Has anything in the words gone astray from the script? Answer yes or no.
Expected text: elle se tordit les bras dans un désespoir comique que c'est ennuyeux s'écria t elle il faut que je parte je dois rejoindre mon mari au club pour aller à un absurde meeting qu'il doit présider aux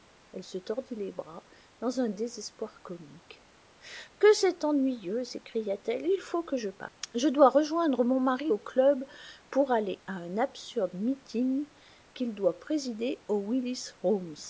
no